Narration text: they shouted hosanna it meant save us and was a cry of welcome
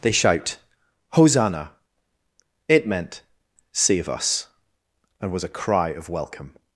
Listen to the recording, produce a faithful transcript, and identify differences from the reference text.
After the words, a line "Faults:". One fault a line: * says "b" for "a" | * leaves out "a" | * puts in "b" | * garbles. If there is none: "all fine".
they shout hosanna it meant save us and was a cry of welcome
Faults:
* says "shout" for "shouted"